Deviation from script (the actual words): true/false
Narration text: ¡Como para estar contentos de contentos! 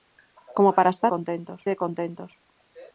false